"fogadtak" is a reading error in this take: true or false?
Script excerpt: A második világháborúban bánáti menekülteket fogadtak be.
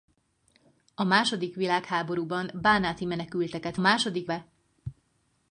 true